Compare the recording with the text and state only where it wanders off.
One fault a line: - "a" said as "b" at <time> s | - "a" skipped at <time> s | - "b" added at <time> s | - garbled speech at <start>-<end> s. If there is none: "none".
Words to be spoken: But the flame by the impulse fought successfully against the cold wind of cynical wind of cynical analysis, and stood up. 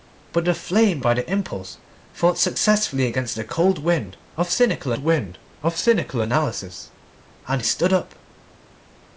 none